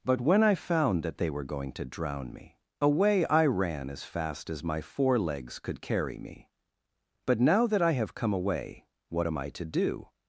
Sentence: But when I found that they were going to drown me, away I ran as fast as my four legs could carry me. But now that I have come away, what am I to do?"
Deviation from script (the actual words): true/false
false